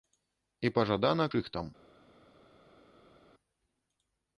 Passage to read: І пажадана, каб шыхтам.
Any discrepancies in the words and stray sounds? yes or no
yes